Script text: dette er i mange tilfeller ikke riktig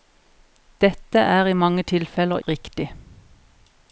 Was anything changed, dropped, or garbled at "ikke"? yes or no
yes